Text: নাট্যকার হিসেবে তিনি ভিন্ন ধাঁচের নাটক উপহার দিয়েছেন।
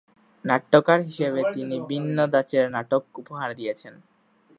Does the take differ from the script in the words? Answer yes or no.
no